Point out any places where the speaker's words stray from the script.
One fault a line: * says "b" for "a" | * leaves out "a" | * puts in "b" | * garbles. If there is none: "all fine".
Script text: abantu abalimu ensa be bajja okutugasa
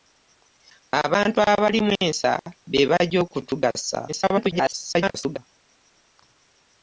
* garbles